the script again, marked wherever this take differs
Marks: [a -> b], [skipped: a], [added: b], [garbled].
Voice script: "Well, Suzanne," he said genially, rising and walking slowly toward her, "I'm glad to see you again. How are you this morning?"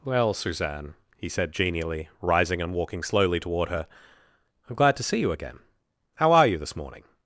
"Well, Suzanne," he said genially, rising and walking slowly toward her, "I'm glad to see you again. How are you this morning?"